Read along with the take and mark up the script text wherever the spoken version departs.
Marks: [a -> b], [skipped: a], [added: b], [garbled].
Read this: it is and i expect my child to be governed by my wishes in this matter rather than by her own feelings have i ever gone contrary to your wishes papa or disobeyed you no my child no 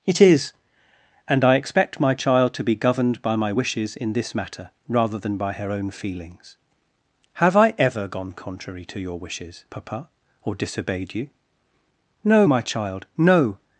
it is and i expect my child to be governed by my wishes in this matter rather than by her own feelings have i ever gone contrary to your wishes papa or disobeyed you no my child no